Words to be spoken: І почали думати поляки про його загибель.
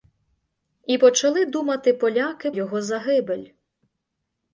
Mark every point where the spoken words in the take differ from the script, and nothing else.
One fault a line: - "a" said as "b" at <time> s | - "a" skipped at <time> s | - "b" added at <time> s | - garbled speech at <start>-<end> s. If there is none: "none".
- "про" skipped at 2.5 s